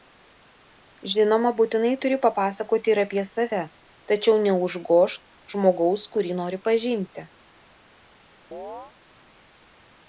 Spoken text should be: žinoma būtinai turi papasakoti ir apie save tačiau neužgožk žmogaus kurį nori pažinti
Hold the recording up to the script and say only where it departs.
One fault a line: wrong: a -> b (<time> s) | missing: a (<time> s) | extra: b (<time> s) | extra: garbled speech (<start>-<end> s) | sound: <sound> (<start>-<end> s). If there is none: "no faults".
sound: chirp (8.5-8.9 s)